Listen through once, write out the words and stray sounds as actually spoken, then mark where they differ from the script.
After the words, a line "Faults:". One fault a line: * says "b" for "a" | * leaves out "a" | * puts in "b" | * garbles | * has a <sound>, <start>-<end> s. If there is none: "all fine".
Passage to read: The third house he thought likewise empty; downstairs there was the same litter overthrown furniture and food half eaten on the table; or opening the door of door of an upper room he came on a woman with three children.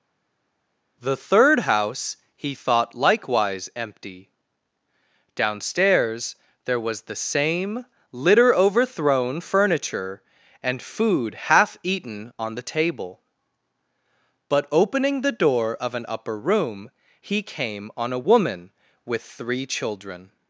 The third house he thought likewise empty; downstairs there was the same litter overthrown furniture and food half eaten on the table; but opening the door of an upper room he came on a woman with three children.
Faults:
* says "but" for "or"
* leaves out "door of"